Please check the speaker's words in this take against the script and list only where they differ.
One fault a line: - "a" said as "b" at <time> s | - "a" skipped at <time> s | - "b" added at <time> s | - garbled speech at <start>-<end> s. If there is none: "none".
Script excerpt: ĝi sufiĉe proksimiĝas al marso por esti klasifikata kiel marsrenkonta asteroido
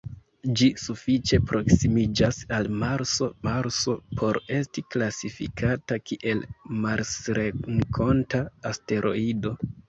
- "marso" added at 3.5 s